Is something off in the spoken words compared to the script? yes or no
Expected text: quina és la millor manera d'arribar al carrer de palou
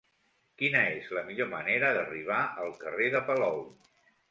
no